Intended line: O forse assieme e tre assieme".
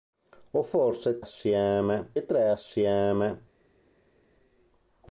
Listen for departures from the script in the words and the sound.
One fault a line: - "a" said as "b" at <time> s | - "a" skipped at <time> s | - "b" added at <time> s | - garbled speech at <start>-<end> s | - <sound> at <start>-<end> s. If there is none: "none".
none